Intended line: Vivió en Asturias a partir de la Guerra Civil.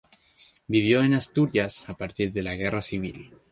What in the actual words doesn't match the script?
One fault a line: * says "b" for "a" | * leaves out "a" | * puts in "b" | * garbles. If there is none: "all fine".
all fine